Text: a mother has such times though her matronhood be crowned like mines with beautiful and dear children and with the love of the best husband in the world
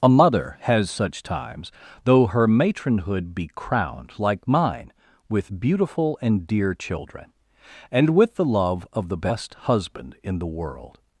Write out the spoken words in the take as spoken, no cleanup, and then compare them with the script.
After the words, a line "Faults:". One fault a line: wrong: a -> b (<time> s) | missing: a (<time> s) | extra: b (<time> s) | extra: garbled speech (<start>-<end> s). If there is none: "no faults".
a mother has such times though her matronhood be crowned like mine with beautiful and dear children and with the love of the best husband in the world
Faults:
wrong: mines -> mine (4.5 s)